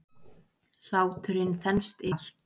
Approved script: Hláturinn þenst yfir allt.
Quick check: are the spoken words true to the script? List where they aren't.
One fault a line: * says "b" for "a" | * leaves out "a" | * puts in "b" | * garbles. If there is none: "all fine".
* leaves out "yfir"